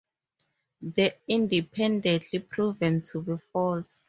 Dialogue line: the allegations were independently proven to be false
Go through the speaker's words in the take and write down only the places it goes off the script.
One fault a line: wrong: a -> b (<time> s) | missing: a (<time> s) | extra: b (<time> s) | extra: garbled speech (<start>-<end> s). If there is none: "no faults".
missing: allegations were (1.1 s)